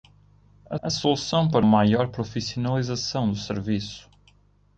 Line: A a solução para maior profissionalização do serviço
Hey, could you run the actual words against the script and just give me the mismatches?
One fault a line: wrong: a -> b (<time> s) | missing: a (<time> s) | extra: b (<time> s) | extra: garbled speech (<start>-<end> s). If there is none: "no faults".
no faults